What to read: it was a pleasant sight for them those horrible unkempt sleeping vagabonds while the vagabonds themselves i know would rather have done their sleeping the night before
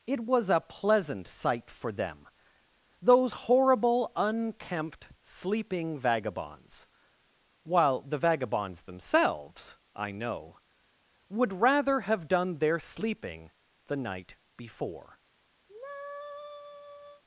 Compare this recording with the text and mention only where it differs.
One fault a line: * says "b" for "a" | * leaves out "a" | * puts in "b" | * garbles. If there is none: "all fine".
all fine